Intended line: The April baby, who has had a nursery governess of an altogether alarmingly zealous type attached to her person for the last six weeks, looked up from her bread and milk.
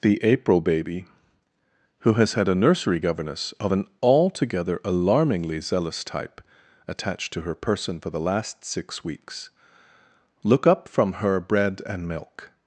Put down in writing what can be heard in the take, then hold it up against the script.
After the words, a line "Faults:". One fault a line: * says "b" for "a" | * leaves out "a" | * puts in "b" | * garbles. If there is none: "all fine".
The April baby, who has had a nursery governess of an altogether alarmingly zealous type attached to her person for the last six weeks, look up from her bread and milk.
Faults:
* says "look" for "looked"